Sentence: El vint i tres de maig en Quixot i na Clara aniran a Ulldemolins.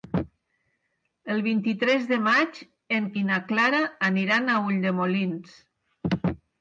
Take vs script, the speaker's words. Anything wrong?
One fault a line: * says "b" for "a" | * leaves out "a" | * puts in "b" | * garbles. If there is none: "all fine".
* leaves out "Quixot"